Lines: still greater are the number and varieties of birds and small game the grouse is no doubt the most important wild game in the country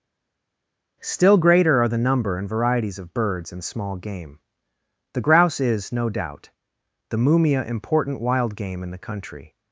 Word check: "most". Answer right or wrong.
wrong